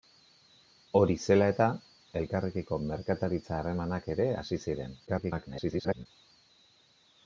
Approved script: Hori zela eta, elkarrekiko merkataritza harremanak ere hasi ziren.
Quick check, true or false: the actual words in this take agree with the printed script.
false